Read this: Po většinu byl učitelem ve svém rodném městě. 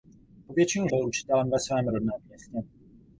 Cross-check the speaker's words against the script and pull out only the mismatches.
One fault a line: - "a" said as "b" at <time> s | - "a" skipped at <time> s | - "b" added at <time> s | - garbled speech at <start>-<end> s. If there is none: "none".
none